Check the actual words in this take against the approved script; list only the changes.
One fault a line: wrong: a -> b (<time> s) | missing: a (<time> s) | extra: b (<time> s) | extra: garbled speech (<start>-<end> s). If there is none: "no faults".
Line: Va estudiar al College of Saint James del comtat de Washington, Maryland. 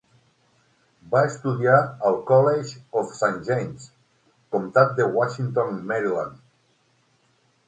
missing: del (3.9 s)